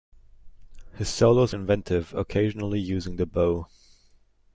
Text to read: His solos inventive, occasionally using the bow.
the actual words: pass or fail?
pass